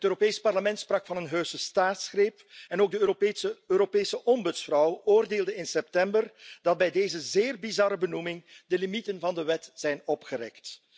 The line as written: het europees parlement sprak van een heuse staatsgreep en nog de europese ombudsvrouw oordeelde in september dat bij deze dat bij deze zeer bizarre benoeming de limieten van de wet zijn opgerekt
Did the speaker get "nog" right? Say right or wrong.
wrong